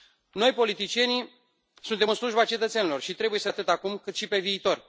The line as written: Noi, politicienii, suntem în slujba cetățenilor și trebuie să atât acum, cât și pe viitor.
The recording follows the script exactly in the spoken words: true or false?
true